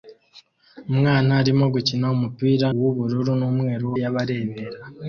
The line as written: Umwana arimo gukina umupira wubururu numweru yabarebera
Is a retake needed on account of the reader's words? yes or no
no